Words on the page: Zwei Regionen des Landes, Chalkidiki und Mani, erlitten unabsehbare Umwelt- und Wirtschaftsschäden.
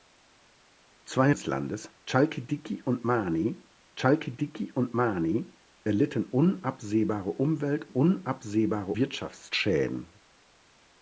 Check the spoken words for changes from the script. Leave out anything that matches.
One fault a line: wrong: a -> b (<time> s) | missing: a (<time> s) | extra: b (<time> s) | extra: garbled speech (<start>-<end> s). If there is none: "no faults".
missing: Regionen (1.3 s)
extra: Chalkidiki und Mani (4.0 s)
wrong: und -> unabsehbare (7.9 s)